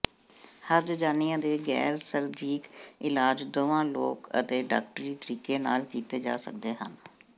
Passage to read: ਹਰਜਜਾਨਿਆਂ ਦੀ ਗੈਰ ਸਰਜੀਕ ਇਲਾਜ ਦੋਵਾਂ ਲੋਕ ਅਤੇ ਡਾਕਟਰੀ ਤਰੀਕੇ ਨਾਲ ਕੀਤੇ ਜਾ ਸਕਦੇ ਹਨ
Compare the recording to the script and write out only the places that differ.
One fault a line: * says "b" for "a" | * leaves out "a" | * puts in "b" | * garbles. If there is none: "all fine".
* says "ਦੇ" for "ਦੀ"